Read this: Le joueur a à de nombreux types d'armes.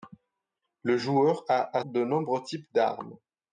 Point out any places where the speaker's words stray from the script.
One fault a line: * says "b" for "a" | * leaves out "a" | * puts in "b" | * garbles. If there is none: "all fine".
all fine